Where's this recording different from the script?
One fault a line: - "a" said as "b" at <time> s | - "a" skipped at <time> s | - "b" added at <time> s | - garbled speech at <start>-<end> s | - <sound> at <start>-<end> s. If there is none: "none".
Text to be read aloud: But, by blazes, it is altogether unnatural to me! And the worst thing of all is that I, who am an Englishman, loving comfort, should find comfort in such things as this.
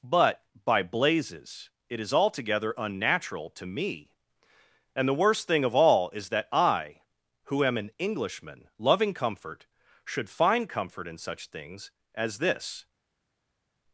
none